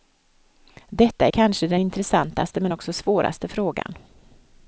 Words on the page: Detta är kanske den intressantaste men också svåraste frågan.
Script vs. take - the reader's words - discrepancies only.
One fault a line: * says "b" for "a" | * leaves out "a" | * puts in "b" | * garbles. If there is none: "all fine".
all fine